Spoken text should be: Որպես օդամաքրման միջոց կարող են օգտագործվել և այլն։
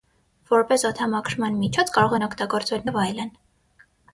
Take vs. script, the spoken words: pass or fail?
pass